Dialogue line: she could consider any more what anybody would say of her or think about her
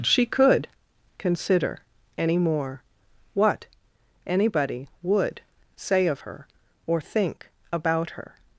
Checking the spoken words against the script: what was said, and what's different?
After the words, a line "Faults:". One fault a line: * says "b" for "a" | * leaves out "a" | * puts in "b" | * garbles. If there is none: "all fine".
she could consider any more what anybody would say of her or think about her
Faults:
all fine